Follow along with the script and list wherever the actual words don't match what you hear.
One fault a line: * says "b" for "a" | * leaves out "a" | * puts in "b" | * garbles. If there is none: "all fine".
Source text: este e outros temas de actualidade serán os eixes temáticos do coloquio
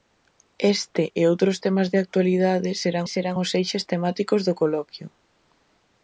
* puts in "serán"